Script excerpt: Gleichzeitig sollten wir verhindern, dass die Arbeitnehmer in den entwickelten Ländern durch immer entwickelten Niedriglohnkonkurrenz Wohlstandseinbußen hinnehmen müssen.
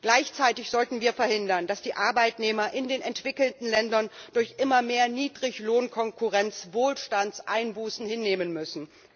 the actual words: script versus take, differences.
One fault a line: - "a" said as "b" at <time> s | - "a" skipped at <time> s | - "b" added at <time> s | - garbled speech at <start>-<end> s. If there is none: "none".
- "entwickelten" said as "mehr" at 4.8 s